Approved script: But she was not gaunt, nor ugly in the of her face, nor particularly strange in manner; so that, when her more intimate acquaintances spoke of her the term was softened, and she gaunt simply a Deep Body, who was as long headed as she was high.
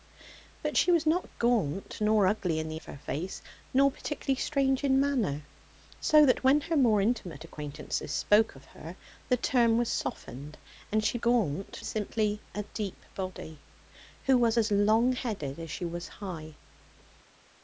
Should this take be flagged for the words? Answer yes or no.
no